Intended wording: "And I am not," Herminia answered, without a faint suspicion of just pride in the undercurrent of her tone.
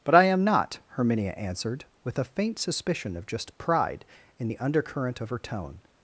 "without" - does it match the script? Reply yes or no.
no